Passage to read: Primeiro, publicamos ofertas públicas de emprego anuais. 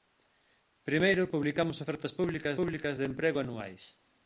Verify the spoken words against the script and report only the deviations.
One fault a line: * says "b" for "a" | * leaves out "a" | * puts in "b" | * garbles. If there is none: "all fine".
* puts in "públicas"